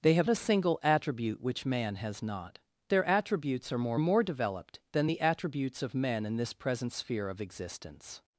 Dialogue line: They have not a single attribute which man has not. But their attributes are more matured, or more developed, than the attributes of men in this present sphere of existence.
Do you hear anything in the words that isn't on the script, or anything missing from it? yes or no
yes